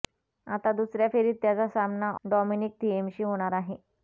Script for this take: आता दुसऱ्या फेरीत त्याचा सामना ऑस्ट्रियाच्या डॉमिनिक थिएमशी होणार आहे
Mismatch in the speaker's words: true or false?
true